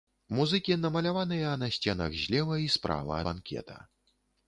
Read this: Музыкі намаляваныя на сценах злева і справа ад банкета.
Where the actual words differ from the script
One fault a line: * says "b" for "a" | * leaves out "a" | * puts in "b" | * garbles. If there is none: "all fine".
* leaves out "ад"